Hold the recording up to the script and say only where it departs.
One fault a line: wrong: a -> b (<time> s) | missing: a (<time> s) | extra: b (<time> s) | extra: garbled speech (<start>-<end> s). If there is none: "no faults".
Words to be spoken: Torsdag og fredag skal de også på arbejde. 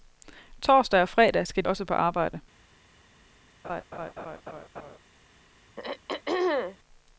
missing: de (1.6 s)